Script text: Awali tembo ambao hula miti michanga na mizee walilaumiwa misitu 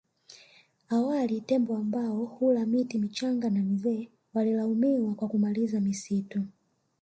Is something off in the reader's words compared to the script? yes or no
yes